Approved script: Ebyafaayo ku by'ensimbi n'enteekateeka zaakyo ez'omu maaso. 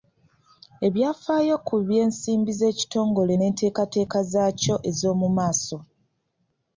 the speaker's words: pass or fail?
fail